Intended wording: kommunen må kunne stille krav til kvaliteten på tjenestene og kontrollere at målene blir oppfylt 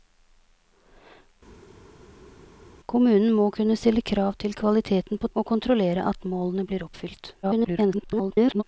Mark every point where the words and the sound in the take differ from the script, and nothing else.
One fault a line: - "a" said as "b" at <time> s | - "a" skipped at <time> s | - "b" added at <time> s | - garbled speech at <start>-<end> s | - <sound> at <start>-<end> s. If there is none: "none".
- "tjenestene" skipped at 5.3 s
- garbled speech at 7.4-8.6 s